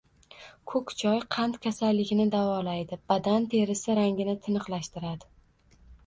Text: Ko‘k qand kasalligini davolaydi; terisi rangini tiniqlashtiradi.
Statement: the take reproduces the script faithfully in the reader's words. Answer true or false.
false